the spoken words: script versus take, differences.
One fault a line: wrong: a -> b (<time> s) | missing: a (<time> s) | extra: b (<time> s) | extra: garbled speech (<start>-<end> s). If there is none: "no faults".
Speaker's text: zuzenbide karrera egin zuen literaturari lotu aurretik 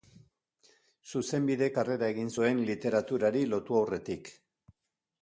no faults